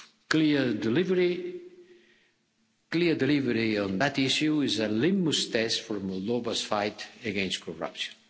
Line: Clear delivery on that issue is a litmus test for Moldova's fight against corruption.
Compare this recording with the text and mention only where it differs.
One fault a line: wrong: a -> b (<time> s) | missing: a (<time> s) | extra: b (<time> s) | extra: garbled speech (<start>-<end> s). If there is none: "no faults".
no faults